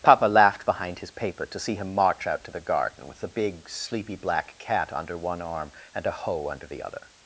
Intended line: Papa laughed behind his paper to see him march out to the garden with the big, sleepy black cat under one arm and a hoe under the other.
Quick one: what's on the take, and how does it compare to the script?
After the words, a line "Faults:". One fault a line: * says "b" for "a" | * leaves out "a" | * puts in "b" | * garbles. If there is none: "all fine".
Papa laughed behind his paper to see him march out to the garden with the big, sleepy black cat under one arm and a hoe under the other.
Faults:
all fine